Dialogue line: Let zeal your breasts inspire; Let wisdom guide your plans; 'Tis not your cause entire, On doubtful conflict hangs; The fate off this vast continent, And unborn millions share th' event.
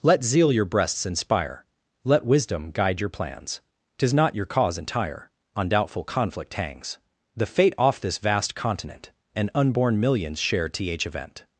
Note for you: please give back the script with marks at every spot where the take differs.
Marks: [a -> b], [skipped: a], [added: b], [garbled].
Let zeal your breasts inspire; Let wisdom guide your plans; 'Tis not your cause entire, On doubtful conflict hangs; The fate off this vast continent, And unborn millions share th' event.